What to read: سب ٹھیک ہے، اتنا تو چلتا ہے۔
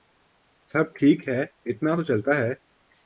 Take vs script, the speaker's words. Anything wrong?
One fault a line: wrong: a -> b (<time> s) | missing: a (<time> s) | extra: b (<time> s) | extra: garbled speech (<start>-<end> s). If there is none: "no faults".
no faults